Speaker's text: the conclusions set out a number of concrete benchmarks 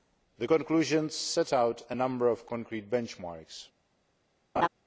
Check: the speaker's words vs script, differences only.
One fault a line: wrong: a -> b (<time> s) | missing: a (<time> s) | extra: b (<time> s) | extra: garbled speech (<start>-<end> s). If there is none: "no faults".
no faults